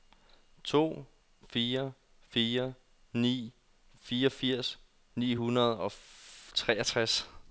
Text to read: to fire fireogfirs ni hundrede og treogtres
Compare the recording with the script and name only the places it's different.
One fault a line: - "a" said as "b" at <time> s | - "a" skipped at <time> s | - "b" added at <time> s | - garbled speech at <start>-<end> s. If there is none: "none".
- "fire ni" added at 2.3 s